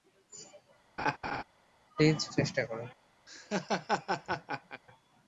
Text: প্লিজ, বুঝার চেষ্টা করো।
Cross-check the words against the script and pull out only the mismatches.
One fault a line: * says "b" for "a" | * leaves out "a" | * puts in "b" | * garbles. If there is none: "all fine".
* leaves out "বুঝার"